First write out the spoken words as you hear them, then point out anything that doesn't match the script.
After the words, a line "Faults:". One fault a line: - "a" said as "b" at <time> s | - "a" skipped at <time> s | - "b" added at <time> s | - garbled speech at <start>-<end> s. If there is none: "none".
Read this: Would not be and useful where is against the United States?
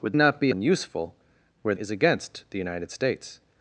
Would not be and useful where is against the United States?
Faults:
none